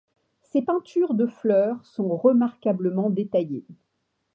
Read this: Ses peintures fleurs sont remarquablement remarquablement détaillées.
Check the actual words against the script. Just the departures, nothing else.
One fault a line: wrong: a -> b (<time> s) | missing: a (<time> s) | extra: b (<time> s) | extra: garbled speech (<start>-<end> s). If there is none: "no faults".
extra: de (1.1 s)
missing: remarquablement (3.1 s)